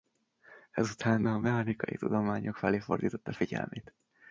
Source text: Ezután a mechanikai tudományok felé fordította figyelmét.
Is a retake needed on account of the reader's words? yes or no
no